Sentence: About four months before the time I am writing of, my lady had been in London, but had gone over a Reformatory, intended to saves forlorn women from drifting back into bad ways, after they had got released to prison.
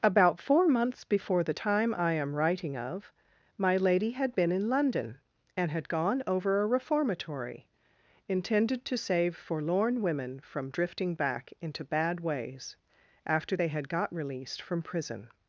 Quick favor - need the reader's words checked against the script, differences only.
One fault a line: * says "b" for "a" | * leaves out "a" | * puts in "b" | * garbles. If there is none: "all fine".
* says "and" for "but"
* says "save" for "saves"
* says "from" for "to"